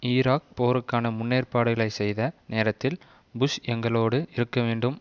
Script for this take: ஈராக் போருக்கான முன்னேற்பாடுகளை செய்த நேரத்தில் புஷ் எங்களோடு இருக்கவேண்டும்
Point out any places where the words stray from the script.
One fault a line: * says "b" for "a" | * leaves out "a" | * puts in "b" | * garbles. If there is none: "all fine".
all fine